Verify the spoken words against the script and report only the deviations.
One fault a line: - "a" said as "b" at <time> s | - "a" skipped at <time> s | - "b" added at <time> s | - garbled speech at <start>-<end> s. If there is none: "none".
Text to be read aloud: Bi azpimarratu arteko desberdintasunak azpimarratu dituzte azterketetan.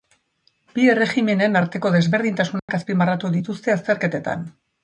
- "azpimarratu" said as "erregimenen" at 0.9 s